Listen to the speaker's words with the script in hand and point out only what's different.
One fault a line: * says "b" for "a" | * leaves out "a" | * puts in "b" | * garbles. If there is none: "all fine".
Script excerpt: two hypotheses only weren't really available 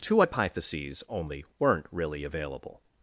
all fine